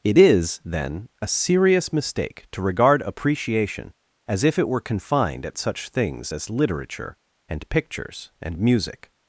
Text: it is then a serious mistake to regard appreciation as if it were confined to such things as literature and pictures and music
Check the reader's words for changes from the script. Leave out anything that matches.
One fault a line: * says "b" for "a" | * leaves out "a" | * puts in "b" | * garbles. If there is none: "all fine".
* says "at" for "to"